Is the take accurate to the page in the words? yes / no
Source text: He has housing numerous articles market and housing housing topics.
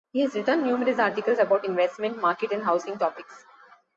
no